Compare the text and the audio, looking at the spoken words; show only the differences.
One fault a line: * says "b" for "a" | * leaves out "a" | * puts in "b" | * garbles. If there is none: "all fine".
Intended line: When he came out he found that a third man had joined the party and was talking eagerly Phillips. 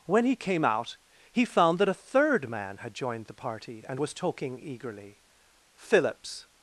all fine